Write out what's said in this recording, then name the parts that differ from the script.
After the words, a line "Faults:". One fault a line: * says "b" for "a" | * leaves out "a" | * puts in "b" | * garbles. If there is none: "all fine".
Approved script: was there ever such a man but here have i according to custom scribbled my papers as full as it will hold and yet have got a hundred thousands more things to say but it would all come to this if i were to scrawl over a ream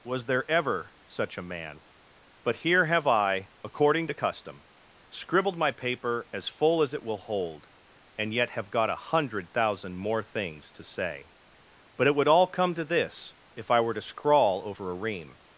was there ever such a man but here have i according to custom scribbled my paper as full as it will hold and yet have got a hundred thousand more things to say but it would all come to this if i were to scrawl over a ream
Faults:
* says "paper" for "papers"
* says "thousand" for "thousands"